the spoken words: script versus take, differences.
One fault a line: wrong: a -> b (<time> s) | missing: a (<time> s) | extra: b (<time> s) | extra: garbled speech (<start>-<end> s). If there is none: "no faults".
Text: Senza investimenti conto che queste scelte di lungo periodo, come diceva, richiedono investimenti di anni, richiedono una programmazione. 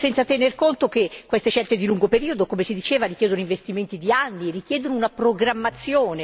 wrong: investimenti -> tener (0.2 s)
extra: si (2.6 s)